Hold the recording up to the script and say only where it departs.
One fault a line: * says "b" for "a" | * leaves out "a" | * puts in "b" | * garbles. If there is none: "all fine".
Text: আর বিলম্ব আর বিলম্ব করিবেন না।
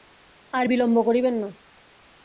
* leaves out "আর বিলম্ব"